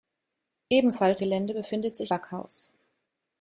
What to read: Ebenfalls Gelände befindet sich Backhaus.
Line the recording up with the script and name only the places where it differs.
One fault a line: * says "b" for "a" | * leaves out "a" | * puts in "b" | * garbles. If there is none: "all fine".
all fine